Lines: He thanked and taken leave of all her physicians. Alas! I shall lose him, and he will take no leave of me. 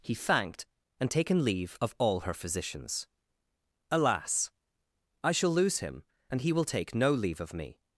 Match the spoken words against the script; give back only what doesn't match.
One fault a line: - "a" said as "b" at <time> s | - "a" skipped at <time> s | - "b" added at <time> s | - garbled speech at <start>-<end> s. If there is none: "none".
none